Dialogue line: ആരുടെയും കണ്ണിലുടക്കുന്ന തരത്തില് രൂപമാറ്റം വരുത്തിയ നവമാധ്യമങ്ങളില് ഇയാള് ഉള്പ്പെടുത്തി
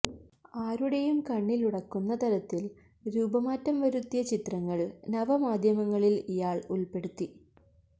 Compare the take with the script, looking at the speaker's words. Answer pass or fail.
fail